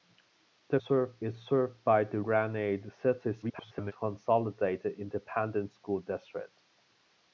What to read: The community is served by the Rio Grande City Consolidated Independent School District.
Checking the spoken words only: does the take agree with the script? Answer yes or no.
no